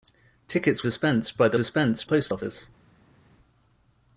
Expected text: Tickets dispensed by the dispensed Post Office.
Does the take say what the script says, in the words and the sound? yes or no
yes